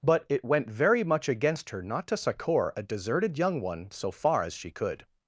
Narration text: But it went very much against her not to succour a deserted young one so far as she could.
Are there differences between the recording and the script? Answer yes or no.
no